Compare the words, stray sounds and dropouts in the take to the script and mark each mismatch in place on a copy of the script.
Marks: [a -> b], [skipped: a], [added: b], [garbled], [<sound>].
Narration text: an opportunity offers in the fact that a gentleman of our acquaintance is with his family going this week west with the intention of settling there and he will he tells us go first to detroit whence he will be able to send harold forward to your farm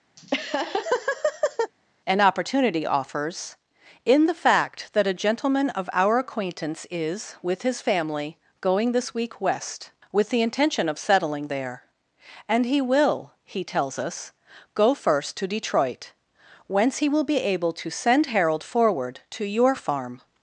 [laugh] an opportunity offers in the fact that a gentleman of our acquaintance is with his family going this week west with the intention of settling there and he will he tells us go first to detroit whence he will be able to send harold forward to your farm